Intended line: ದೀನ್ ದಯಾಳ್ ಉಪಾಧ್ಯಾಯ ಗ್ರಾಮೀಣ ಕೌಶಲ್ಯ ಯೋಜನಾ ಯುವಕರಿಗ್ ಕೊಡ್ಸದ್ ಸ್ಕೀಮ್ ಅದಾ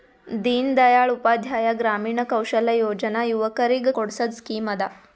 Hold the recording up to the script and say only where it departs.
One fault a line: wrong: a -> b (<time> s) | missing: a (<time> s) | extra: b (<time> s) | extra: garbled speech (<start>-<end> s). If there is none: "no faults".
no faults